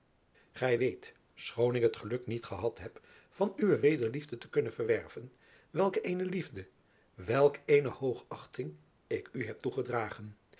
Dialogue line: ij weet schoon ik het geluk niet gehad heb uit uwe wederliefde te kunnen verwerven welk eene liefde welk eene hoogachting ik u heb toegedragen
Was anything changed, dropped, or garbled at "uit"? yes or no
yes